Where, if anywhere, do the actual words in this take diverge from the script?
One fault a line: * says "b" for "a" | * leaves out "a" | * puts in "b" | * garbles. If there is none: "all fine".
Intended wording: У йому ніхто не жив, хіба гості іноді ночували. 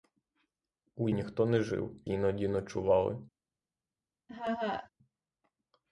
* leaves out "йому"
* leaves out "хіба гості"